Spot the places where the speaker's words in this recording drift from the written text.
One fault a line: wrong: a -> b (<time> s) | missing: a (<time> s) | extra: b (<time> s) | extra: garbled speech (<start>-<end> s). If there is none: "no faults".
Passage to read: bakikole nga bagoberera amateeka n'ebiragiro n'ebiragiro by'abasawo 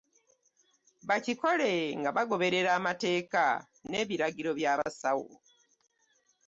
missing: n'ebiragiro (4.5 s)